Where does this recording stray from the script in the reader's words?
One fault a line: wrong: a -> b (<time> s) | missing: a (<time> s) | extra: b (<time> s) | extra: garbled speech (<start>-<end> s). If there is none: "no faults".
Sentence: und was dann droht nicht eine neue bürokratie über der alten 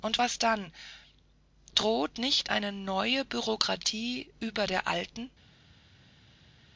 no faults